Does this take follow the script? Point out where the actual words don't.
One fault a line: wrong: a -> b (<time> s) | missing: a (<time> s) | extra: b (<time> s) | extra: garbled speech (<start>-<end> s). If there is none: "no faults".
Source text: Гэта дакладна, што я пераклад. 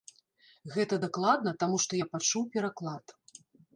extra: таму (1.6 s)
extra: пачуў (2.1 s)